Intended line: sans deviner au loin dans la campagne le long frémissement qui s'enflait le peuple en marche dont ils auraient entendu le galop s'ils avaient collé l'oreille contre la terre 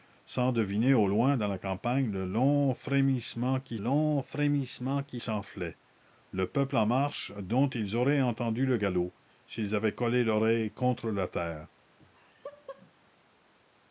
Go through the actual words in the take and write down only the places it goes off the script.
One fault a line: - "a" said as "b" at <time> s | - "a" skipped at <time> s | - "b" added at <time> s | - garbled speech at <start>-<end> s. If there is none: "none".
- "long frémissement qui" added at 3.8 s